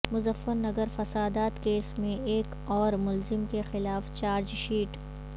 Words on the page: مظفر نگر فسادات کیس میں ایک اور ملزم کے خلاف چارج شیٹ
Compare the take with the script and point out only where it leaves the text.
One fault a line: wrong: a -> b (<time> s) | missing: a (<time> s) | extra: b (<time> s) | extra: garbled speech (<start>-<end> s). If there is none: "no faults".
no faults